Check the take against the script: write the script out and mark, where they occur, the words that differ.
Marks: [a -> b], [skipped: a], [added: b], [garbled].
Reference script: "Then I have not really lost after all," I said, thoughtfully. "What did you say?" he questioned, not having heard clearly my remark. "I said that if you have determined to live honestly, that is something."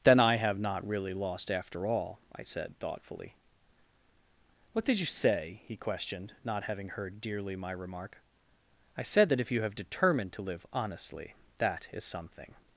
"Then I have not really lost after all," I said, thoughtfully. "What did you say?" he questioned, not having heard [clearly -> dearly] my remark. "I said that if you have determined to live honestly, that is something."